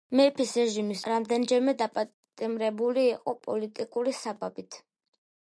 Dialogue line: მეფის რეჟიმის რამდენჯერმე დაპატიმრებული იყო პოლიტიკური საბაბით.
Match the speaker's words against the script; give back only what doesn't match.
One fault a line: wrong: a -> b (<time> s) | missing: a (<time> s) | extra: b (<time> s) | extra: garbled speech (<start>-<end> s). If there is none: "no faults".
no faults